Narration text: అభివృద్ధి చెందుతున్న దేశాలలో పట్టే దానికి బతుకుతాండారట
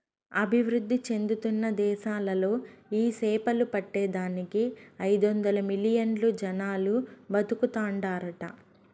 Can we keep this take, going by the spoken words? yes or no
no